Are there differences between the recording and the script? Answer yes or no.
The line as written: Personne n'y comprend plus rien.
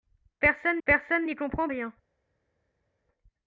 yes